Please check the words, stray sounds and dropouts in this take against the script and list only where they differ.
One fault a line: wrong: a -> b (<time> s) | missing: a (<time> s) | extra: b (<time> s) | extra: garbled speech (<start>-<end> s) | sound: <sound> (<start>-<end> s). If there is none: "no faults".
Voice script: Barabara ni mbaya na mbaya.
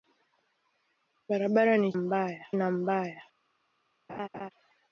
sound: laugh (4.1-4.5 s)